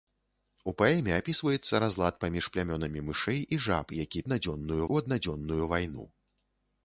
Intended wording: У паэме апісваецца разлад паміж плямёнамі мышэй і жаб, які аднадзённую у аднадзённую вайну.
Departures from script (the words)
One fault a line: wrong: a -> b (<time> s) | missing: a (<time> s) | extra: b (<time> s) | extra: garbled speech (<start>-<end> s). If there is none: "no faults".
no faults